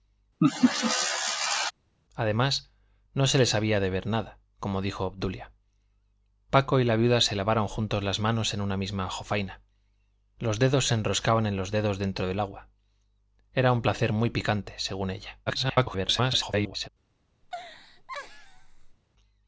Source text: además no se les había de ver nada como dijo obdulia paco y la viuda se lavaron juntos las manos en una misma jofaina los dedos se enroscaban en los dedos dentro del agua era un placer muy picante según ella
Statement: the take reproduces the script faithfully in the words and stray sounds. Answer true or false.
false